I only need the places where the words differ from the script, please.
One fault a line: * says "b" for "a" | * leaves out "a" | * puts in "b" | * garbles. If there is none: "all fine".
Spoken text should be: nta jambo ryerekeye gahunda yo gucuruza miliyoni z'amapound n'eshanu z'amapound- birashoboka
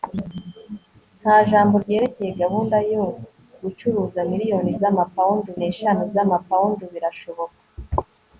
all fine